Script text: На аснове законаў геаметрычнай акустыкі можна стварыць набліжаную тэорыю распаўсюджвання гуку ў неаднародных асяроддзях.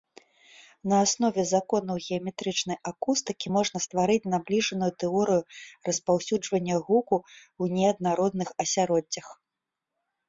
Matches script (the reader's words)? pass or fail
pass